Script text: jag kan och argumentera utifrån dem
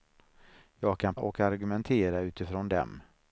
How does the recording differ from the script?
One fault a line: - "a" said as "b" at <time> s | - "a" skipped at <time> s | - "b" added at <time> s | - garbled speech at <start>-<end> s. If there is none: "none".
none